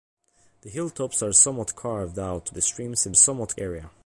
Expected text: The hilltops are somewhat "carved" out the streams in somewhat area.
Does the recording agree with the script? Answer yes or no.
yes